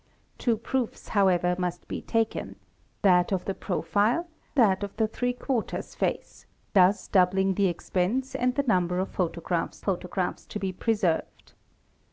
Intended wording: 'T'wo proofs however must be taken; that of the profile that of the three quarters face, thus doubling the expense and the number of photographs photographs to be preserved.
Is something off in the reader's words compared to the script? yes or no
no